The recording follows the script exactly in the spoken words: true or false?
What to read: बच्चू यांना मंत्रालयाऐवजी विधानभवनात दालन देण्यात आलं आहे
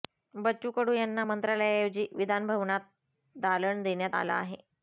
false